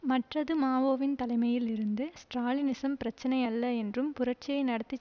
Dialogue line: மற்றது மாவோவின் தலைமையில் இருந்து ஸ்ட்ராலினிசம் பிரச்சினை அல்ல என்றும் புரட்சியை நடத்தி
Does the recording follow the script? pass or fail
pass